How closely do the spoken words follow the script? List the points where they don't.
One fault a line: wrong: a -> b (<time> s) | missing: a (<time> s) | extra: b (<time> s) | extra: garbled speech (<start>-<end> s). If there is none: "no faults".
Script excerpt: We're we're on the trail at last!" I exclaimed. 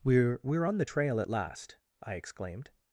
no faults